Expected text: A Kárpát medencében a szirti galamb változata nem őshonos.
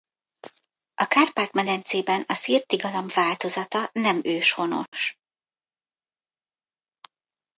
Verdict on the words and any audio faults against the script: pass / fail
pass